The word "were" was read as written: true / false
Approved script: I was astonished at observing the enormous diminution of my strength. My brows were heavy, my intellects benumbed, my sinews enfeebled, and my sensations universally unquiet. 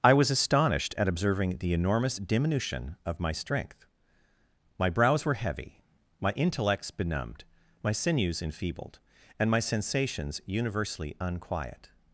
true